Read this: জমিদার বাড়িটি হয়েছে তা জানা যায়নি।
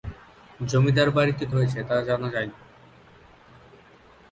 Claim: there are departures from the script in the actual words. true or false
false